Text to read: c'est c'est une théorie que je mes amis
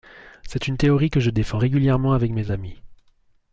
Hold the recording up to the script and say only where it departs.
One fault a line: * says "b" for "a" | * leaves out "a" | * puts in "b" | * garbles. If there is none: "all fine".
* leaves out "c'est"
* puts in "défends régulièrement avec"